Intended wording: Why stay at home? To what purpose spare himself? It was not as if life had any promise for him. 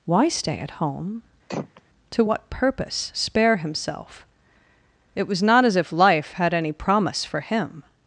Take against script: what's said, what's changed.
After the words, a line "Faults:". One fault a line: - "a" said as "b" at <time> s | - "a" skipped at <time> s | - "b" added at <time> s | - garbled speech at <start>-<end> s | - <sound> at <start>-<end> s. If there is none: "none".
Why stay at home? To what purpose spare himself? It was not as if life had any promise for him.
Faults:
- throat clearing at 1.5-1.8 s